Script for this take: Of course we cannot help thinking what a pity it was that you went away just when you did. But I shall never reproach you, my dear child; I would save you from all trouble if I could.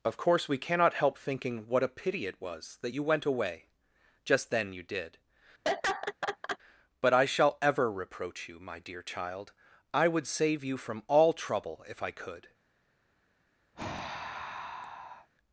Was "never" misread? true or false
true